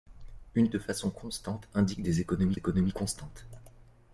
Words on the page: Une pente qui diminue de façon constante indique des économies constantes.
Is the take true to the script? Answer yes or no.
no